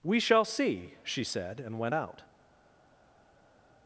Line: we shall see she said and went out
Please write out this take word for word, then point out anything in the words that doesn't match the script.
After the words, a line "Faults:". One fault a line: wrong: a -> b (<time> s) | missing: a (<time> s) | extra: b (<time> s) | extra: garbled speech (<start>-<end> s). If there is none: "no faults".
we shall see she said and went out
Faults:
no faults